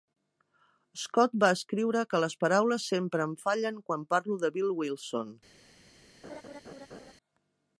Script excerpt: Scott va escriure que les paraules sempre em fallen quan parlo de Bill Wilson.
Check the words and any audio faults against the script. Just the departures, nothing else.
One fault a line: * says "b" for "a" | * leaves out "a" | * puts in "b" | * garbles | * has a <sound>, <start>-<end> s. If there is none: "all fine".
* has a laugh, 6.2-7.1 s